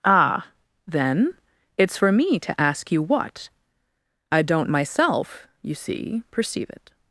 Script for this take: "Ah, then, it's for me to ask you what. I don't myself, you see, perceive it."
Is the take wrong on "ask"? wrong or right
right